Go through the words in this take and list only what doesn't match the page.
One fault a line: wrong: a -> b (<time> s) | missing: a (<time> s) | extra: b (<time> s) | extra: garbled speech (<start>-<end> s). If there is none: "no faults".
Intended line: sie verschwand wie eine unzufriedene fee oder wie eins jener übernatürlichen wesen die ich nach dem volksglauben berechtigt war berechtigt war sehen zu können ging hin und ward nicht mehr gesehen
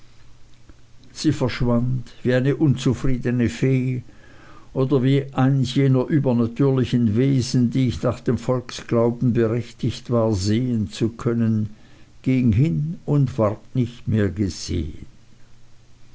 missing: berechtigt war (10.3 s)